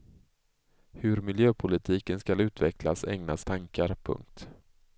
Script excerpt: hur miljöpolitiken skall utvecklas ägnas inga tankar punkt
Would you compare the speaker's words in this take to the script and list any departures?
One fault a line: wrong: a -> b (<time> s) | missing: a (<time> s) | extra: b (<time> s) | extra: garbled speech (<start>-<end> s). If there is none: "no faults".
missing: inga (3.5 s)